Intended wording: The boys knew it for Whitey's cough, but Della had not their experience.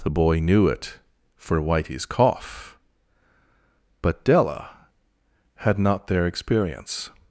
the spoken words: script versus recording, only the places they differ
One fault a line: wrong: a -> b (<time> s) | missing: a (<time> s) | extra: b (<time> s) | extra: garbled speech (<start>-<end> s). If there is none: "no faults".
wrong: boys -> boy (0.1 s)